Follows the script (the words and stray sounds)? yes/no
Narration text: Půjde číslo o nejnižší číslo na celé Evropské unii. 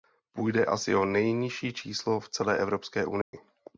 no